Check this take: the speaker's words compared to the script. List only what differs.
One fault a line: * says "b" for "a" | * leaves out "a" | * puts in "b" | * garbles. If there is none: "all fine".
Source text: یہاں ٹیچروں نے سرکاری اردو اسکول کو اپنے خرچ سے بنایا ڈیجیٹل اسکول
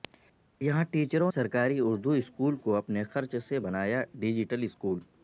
* leaves out "نے"